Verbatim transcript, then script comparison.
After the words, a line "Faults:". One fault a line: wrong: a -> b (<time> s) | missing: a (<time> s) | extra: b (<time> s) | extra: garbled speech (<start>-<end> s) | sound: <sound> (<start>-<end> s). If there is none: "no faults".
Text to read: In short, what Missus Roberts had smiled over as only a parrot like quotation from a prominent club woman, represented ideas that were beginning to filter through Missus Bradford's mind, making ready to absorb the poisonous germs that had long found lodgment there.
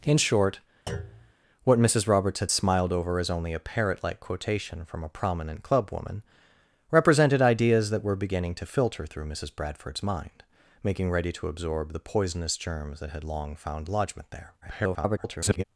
In short, what Missus Roberts had smiled over as only a parrot like quotation from a prominent club woman, represented ideas that were beginning to filter through Missus Bradford's mind, making ready to absorb the poisonous germs that had long found lodgment there. [garbled]
Faults:
sound: thud (0.9-1.3 s)
extra: garbled speech (14.6-15.6 s)